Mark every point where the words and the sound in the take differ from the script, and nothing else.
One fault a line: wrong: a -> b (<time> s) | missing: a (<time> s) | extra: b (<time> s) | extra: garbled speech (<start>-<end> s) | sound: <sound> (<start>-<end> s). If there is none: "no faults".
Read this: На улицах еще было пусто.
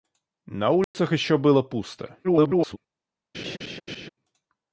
sound: dropout (0.8-0.9 s)
extra: garbled speech (2.2-2.8 s)
sound: laugh (3.3-4.1 s)